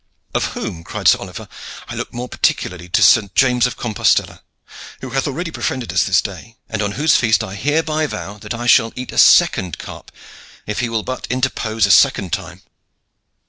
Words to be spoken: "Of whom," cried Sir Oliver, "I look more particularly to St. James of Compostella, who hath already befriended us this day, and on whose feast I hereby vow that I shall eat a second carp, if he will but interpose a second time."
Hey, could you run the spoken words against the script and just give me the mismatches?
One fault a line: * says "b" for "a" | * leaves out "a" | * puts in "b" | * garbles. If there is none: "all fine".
all fine